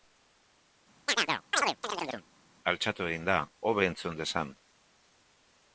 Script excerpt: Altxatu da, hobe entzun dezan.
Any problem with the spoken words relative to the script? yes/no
yes